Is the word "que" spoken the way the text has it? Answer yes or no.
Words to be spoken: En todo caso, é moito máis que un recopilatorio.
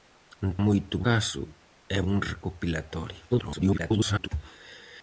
no